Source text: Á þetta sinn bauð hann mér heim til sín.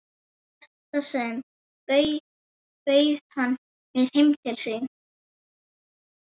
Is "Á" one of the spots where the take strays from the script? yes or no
yes